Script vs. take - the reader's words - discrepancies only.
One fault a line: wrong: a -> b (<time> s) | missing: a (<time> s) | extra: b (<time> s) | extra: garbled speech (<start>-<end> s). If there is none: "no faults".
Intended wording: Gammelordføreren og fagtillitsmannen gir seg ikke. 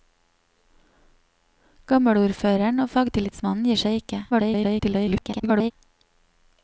extra: garbled speech (4.3-5.7 s)